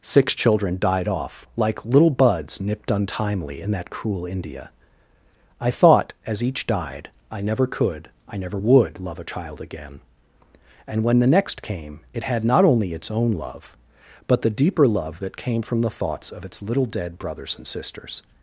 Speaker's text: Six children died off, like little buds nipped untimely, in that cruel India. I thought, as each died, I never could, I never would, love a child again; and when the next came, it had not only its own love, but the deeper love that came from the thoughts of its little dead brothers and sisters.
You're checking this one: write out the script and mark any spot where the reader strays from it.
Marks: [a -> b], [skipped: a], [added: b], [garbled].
Six children died off, like little buds nipped untimely, in that cruel India. I thought, as each died, I never could, I never would, love a child again; and when the next came, it had not only its own love, but the deeper love that came from the thoughts of its little dead brothers and sisters.